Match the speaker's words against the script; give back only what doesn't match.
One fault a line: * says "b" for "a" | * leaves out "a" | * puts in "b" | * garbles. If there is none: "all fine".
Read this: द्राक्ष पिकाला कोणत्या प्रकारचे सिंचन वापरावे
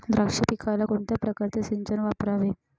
all fine